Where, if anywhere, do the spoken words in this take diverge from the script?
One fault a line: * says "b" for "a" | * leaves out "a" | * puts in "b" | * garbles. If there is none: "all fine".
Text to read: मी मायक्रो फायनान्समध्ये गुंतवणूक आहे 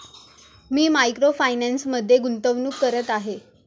* puts in "करत"